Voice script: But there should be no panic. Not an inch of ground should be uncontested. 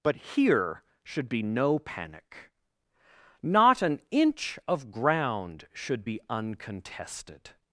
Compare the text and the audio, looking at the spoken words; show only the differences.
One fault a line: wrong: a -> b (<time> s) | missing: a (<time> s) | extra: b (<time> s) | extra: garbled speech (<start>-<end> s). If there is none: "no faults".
wrong: there -> here (0.1 s)